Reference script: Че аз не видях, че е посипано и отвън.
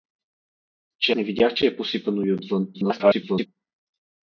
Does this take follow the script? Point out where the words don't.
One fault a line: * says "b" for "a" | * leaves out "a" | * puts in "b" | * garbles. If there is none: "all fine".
* leaves out "аз"
* garbles